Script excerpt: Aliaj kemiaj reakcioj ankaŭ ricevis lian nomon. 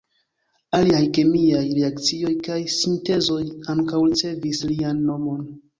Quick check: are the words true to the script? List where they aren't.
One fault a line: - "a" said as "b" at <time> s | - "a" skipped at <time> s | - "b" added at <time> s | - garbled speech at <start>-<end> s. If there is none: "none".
- "kaj sintezoj" added at 2.5 s